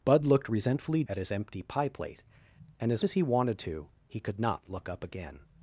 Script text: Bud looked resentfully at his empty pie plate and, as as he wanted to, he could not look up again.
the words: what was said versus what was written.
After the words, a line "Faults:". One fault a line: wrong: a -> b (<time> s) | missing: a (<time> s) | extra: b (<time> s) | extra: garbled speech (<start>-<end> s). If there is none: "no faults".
Bud looked resentfully at his empty pie plate and, as as he wanted to, he could not look up again.
Faults:
no faults